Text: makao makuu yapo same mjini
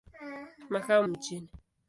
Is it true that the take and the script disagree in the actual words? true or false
true